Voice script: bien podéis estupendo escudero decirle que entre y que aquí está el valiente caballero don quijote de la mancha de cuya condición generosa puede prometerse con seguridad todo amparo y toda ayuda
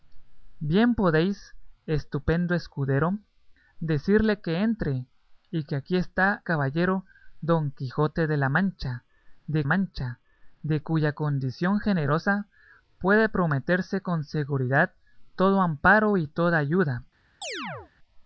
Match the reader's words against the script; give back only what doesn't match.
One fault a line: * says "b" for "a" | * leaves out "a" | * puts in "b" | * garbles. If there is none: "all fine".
* leaves out "el valiente"
* puts in "mancha de"